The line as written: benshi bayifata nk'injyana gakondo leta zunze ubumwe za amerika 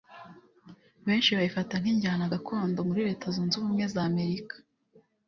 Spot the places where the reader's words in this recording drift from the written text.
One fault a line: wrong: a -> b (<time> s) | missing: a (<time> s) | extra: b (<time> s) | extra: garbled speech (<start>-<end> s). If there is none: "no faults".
extra: muri (2.9 s)